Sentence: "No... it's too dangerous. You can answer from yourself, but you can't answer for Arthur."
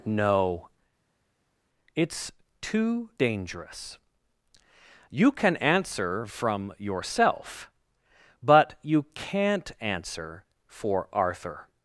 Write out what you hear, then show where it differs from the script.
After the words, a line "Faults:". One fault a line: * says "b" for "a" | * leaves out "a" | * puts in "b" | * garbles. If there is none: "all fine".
"No... it's too dangerous. You can answer from yourself, but you can't answer for Arthur."
Faults:
all fine